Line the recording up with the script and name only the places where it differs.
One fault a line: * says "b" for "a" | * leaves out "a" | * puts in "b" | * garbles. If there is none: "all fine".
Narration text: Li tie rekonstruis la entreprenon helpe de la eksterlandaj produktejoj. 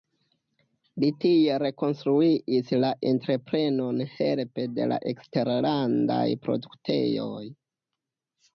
all fine